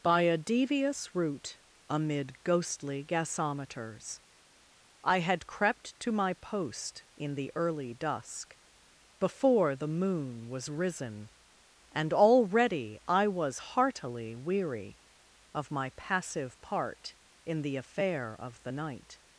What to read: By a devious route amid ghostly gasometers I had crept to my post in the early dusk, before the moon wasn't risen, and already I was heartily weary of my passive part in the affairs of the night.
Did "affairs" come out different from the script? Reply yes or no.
yes